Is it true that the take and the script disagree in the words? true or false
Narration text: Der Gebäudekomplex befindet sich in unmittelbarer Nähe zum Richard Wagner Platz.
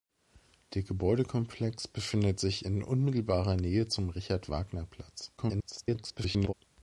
true